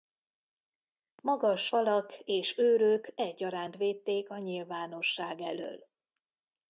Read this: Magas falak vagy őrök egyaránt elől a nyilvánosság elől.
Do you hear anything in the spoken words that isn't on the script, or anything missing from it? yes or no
yes